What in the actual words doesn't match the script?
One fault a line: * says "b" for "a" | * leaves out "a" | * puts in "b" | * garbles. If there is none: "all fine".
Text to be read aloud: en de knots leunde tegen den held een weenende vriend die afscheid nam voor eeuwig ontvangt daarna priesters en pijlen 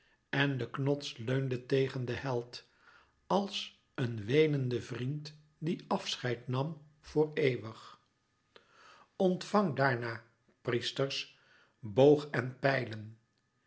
* puts in "als"
* puts in "boog"